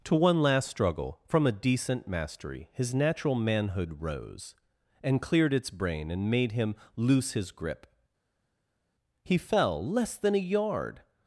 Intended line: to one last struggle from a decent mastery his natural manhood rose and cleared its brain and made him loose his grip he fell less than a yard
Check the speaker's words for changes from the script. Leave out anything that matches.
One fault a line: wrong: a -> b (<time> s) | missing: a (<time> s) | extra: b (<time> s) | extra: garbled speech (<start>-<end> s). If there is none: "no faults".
no faults